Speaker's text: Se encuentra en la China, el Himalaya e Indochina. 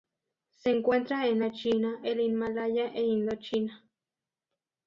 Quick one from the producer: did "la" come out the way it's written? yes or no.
yes